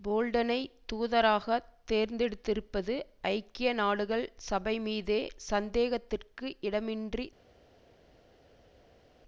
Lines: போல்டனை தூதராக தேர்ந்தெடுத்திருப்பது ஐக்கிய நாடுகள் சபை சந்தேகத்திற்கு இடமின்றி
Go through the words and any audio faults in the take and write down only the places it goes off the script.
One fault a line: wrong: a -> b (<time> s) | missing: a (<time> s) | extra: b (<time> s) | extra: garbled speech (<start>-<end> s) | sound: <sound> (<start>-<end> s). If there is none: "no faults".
extra: மீதே (4.8 s)